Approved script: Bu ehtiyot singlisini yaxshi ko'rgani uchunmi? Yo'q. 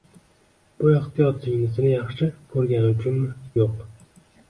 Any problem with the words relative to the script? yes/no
no